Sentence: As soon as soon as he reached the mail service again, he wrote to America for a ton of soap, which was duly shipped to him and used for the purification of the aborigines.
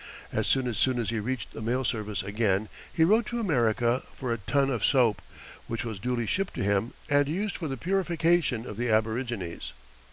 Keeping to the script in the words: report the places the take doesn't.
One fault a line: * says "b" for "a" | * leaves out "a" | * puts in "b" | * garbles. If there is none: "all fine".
all fine